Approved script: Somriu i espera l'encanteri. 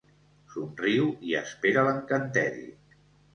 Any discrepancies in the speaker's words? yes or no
no